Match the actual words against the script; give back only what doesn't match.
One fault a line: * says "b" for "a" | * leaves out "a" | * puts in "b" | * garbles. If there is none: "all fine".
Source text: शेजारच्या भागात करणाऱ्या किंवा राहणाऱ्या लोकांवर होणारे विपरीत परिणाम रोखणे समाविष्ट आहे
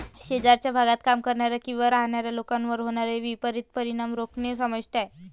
* puts in "काम"